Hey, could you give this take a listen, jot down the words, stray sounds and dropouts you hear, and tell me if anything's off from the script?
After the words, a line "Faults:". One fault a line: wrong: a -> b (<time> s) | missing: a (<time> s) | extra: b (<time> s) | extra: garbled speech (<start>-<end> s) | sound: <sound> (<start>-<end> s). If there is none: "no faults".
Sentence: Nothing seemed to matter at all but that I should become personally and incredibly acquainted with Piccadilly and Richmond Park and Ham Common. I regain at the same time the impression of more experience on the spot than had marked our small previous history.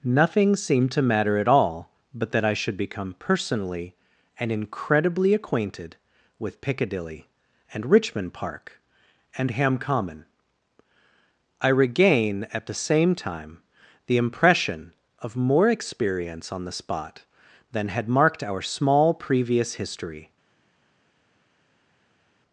Nothing seemed to matter at all but that I should become personally and incredibly acquainted with Piccadilly and Richmond Park and Ham Common. I regain at the same time the impression of more experience on the spot than had marked our small previous history.
Faults:
no faults